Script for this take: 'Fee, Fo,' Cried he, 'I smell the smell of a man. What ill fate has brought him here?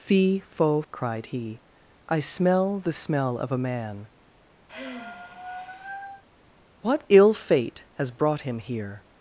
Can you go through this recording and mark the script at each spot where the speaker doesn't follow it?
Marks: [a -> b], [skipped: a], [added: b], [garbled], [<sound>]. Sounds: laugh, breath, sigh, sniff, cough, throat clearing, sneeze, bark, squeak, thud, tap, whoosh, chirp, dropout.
'Fee, Fo,' Cried he, 'I smell the smell of a man. [sigh] What ill fate has brought him here?